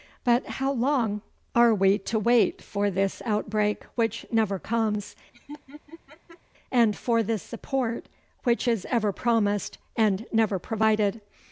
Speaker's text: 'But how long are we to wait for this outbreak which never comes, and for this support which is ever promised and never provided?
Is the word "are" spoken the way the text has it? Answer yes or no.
yes